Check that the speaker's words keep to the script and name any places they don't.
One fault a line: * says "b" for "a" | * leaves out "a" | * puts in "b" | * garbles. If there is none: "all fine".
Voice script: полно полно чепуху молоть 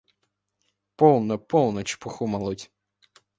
all fine